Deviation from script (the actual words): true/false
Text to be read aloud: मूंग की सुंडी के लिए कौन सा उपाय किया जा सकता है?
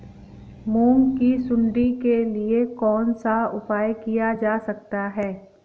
false